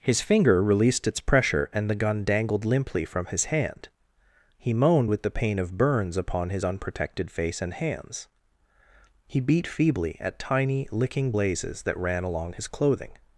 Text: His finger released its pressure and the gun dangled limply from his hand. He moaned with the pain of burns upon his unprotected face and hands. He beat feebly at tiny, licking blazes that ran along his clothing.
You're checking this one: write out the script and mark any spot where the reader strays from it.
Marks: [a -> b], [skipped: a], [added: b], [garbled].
His finger released its pressure and the gun dangled limply from his hand. He moaned with the pain of burns upon his unprotected face and hands. He beat feebly at tiny, licking blazes that ran along his clothing.